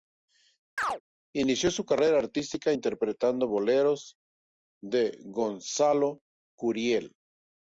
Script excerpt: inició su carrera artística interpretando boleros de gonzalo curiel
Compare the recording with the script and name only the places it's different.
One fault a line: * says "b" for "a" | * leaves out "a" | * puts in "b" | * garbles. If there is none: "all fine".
all fine